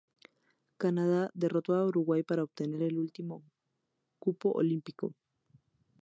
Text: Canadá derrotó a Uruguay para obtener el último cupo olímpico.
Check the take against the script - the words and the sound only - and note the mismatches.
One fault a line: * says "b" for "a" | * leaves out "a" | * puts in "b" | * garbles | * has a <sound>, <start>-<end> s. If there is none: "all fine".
all fine